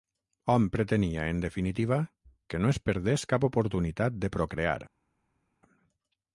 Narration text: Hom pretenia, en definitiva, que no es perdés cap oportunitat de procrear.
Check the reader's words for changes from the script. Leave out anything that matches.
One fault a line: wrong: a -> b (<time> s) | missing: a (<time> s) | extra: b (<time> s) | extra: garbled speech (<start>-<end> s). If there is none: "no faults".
no faults